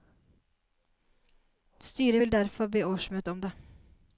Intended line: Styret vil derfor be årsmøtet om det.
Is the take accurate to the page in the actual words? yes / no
yes